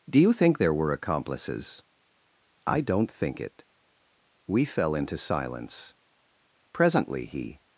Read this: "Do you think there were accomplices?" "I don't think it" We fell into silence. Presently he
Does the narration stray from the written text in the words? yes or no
no